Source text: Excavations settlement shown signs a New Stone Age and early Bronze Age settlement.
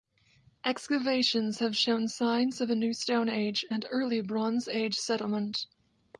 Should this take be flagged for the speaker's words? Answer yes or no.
yes